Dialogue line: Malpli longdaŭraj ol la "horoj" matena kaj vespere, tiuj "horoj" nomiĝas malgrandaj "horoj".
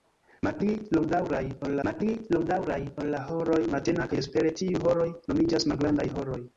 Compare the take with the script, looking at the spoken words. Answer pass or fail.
fail